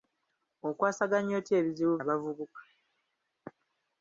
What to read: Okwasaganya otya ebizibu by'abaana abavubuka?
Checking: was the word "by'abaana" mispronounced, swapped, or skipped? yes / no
yes